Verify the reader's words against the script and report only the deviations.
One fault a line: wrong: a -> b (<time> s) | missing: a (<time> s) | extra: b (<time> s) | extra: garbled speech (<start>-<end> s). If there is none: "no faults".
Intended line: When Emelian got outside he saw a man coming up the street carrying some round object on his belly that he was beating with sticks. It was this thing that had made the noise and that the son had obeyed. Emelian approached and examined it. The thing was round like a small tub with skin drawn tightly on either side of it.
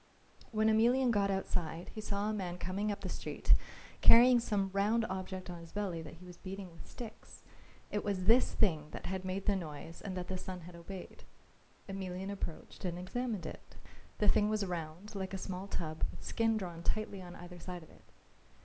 no faults